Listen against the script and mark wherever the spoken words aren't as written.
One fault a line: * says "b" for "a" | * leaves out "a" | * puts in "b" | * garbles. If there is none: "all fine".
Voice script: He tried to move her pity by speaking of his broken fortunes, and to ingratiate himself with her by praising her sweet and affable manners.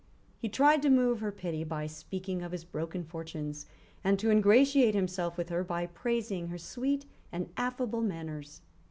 all fine